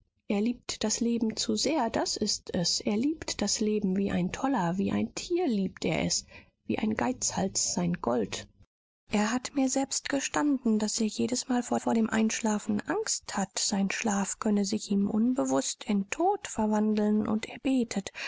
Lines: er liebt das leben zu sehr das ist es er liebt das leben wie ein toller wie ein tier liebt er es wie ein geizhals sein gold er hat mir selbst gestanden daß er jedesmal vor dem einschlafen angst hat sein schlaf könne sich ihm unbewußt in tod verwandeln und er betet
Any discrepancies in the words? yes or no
yes